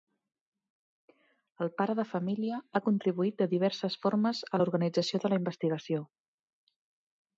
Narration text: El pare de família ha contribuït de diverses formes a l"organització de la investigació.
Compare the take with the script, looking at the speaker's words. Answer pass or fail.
pass